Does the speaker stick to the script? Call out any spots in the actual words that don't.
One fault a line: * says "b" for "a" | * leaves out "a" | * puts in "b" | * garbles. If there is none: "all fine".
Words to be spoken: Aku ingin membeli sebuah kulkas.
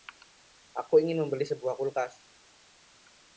all fine